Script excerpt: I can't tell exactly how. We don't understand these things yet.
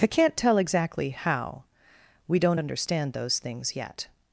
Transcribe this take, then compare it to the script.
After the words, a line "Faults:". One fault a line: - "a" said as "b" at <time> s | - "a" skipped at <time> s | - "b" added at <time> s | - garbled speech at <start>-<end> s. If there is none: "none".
I can't tell exactly how. We don't understand those things yet.
Faults:
- "these" said as "those" at 3.1 s